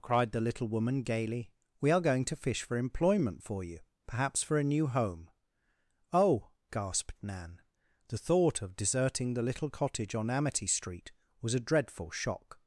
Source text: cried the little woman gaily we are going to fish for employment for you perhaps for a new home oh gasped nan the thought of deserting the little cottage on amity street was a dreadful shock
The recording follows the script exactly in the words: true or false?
true